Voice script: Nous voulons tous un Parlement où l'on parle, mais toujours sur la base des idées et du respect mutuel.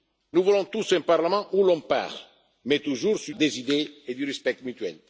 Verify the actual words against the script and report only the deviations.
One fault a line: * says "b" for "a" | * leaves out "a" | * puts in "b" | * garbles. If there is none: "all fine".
* leaves out "la base"